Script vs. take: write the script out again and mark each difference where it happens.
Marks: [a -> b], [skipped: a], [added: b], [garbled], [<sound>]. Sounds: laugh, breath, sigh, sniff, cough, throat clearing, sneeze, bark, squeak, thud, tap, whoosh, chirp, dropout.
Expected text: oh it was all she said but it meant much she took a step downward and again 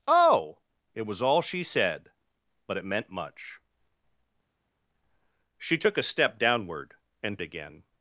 oh it was all she said but it meant much she took a step downward and again